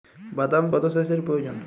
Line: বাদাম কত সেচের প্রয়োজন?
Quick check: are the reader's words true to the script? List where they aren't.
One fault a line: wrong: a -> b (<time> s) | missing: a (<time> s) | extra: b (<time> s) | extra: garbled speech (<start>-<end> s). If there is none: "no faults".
no faults